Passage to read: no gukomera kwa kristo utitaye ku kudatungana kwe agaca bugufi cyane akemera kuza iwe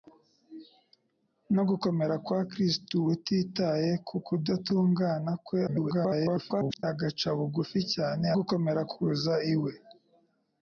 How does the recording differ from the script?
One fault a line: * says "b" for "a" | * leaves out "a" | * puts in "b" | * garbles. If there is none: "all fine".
* garbles
* says "gukomera" for "akemera"